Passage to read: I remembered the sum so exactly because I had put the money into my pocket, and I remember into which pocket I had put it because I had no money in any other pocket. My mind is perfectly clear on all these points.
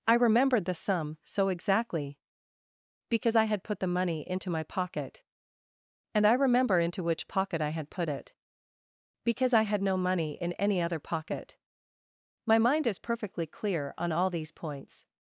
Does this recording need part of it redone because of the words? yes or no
no